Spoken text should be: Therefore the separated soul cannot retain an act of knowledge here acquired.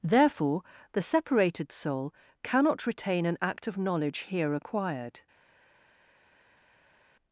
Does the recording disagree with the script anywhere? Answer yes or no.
no